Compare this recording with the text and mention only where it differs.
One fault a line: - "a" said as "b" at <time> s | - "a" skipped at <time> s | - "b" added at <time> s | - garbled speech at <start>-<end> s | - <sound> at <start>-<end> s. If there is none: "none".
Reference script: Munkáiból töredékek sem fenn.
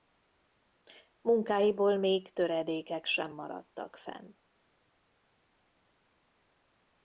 - "még" added at 2.0 s
- "maradtak" added at 3.3 s